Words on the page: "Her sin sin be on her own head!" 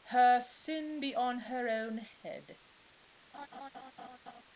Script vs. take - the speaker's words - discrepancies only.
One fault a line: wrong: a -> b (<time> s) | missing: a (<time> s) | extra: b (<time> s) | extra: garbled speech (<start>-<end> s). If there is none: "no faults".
missing: sin (1.0 s)